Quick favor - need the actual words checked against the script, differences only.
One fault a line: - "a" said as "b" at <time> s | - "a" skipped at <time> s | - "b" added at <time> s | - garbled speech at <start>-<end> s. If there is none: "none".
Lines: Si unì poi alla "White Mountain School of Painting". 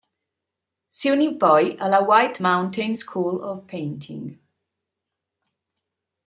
none